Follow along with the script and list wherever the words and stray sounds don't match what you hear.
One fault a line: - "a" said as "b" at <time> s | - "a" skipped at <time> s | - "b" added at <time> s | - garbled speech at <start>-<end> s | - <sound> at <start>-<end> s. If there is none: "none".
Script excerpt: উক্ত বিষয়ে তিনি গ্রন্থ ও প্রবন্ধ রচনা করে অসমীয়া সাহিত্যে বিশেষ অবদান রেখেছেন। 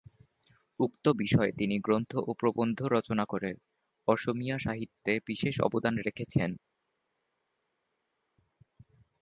none